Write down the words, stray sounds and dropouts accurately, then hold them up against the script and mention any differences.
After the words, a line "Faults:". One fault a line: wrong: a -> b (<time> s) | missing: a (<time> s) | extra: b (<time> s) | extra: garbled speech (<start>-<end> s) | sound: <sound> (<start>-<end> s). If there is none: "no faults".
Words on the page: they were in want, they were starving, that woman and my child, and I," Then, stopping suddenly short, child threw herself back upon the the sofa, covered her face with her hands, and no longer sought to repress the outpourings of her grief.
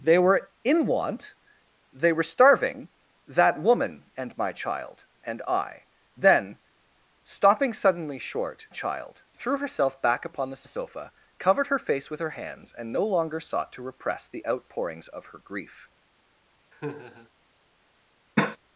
they were in want, they were starving, that woman and my child, and I," Then, stopping suddenly short, child threw herself back upon the the sofa, covered her face with her hands, and no longer sought to repress the outpourings of her grief.
Faults:
sound: laugh (16.7-17.3 s)
sound: cough (18.4-18.6 s)